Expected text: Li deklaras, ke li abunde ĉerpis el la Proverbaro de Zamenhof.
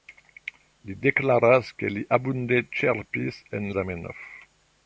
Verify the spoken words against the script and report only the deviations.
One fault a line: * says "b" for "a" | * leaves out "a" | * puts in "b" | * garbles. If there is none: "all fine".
* leaves out "la Proverbaro de"